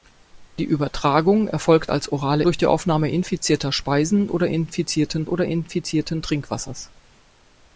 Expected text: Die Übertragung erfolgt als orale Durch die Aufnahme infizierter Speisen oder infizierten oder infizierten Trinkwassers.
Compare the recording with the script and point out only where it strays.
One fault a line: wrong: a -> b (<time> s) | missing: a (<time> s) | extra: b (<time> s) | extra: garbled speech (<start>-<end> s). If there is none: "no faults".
no faults